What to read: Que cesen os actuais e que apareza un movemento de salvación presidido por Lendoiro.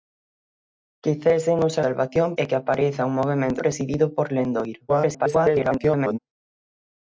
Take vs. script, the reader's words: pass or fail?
fail